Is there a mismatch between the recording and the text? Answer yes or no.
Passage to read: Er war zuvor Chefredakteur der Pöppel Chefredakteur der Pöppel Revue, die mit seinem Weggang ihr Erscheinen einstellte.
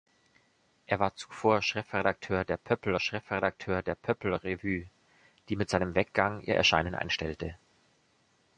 no